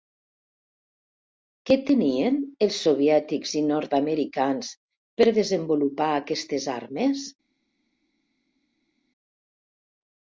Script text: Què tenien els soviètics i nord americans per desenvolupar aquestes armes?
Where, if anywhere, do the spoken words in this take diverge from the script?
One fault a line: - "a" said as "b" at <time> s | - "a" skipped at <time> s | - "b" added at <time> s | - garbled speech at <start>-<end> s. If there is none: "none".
none